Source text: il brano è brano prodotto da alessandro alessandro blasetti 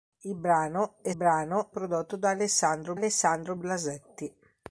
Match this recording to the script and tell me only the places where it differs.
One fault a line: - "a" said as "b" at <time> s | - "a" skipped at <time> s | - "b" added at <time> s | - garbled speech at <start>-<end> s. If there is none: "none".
none